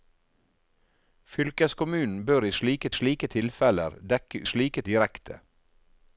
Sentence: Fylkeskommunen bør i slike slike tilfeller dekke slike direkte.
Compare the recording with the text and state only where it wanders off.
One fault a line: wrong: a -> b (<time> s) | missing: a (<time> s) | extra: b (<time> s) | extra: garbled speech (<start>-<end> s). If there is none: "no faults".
no faults